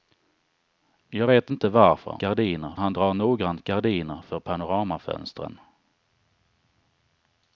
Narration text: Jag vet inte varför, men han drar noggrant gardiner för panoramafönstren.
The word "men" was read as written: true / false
false